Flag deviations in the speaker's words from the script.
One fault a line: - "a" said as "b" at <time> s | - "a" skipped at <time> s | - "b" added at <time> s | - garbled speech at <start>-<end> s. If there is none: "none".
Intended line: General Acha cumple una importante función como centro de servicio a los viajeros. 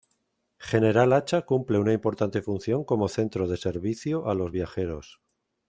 none